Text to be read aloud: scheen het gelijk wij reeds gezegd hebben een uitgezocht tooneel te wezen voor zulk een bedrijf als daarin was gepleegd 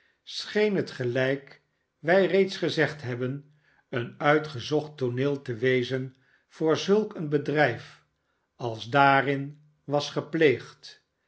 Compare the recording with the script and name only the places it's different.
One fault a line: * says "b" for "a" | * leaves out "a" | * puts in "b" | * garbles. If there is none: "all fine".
all fine